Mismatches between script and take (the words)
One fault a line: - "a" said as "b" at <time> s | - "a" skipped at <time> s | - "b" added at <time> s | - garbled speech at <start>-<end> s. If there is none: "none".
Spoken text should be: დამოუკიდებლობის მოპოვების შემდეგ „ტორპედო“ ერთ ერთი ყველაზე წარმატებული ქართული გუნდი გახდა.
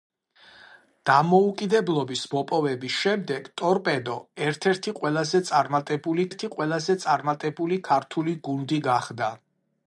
- "ერთი ყველაზე წარმატებული" added at 6.3 s